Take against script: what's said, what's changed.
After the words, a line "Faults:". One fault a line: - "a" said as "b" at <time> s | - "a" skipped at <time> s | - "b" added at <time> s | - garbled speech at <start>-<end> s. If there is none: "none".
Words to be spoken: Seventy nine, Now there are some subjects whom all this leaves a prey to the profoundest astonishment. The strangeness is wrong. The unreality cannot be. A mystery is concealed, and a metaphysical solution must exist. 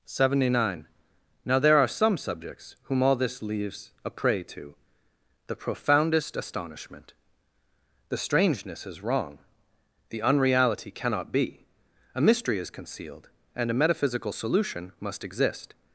Seventy nine, Now there are some subjects whom all this leaves a prey to the profoundest astonishment. The strangeness is wrong. The unreality cannot be. A mystery is concealed, and a metaphysical solution must exist.
Faults:
none